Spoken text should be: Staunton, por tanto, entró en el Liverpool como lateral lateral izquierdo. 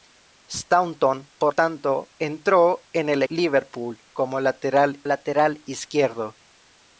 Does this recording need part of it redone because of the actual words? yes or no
no